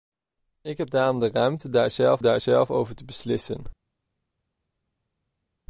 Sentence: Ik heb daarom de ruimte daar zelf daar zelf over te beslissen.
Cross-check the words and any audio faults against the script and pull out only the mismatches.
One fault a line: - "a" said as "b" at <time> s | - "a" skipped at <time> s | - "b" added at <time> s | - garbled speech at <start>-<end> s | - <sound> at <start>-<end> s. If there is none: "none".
none